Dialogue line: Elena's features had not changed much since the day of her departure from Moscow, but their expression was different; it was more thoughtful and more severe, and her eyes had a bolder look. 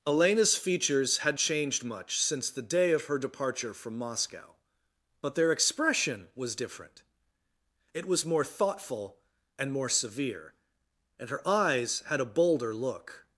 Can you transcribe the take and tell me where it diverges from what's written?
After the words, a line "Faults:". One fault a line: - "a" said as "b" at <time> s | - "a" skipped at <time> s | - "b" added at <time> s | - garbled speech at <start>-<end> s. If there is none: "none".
Elena's features had changed much since the day of her departure from Moscow, but their expression was different; it was more thoughtful and more severe, and her eyes had a bolder look.
Faults:
- "not" skipped at 1.4 s